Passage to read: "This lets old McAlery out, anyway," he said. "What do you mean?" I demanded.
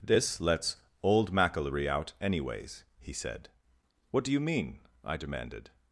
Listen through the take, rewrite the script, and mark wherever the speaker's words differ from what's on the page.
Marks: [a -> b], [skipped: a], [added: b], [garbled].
"This lets old McAlery out, [anyway," -> anyways] he said. "What do you mean?" I demanded.